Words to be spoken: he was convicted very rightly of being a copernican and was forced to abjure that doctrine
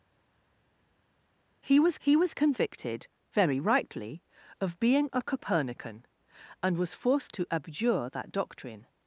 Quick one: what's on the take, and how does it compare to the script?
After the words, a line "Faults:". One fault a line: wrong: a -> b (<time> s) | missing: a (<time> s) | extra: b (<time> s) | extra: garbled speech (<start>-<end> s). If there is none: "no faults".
he was he was convicted very rightly of being a copernican and was forced to abjure that doctrine
Faults:
extra: he was (2.0 s)